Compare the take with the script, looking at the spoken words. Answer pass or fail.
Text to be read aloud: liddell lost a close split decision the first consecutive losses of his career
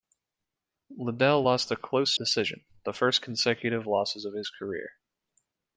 fail